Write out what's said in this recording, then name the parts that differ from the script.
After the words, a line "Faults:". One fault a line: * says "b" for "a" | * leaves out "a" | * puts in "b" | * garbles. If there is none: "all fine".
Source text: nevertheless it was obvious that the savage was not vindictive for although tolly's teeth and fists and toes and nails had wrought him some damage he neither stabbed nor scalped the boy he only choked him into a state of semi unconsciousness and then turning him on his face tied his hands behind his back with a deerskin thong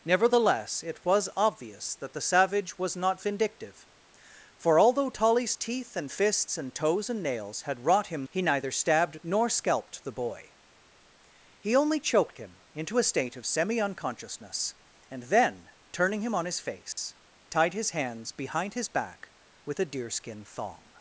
nevertheless it was obvious that the savage was not vindictive for although tolly's teeth and fists and toes and nails had wrought him he neither stabbed nor scalped the boy he only choked him into a state of semi unconsciousness and then turning him on his face tied his hands behind his back with a deerskin thong
Faults:
* leaves out "some damage"